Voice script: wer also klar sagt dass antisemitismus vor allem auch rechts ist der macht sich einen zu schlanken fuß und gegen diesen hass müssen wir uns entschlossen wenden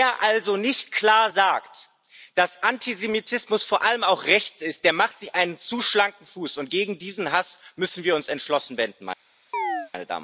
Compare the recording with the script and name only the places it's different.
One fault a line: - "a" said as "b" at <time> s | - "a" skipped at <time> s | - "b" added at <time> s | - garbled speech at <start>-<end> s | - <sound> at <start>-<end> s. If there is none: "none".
- "nicht" added at 0.6 s
- chirp at 9.5-9.9 s